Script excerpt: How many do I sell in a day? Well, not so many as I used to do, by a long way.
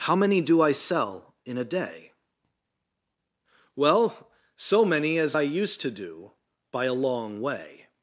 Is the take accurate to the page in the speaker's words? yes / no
no